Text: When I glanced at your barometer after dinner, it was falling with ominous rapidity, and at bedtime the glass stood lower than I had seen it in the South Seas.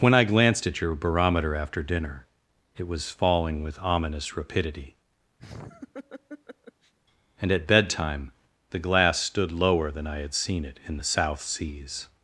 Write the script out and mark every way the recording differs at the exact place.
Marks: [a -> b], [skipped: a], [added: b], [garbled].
When I glanced at your barometer after dinner, it was falling with ominous rapidity, and at bedtime the glass stood lower than I had seen it in the South Seas.